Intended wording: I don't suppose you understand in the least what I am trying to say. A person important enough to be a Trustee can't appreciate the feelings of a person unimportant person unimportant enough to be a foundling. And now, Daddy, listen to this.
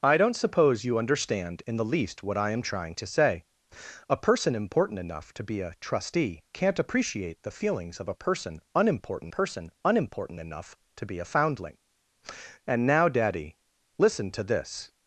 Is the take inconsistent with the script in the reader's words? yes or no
no